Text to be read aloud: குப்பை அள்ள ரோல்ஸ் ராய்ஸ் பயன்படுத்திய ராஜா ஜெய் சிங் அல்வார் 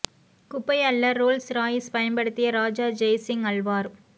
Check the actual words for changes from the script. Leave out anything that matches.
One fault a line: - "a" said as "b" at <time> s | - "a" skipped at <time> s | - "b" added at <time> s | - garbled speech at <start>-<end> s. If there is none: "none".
none